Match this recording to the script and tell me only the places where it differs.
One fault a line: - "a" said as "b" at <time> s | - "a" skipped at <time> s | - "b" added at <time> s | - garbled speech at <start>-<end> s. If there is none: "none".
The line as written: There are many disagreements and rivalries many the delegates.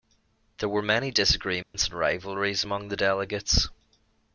- "are" said as "were" at 0.7 s
- "many" said as "among" at 2.6 s